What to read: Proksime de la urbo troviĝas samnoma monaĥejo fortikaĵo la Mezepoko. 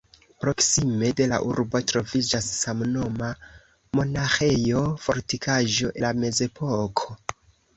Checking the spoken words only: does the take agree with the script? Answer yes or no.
yes